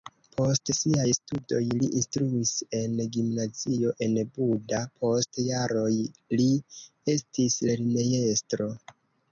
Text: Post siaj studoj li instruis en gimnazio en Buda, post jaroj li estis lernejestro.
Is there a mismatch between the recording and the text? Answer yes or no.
no